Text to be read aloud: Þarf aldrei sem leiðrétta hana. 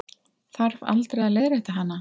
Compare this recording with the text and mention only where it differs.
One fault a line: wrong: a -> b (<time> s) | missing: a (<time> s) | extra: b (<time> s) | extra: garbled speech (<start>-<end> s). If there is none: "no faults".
wrong: sem -> að (1.3 s)